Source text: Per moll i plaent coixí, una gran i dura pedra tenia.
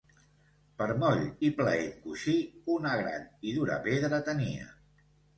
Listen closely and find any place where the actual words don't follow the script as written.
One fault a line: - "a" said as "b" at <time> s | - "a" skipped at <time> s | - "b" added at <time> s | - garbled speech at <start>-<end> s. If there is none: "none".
none